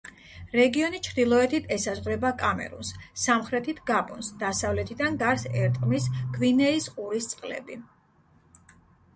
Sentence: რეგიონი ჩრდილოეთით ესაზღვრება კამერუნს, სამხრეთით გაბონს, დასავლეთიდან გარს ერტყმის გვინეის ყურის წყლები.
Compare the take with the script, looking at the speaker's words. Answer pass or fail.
pass